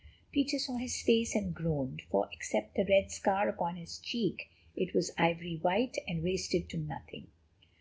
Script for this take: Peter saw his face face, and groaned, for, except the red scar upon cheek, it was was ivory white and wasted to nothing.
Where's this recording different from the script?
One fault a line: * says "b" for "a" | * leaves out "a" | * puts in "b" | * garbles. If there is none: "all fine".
* leaves out "face"
* puts in "his"
* leaves out "was"